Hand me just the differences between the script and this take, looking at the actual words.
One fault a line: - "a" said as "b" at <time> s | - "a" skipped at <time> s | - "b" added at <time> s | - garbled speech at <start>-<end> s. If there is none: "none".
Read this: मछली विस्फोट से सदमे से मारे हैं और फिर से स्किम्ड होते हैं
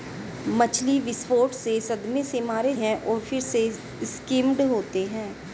none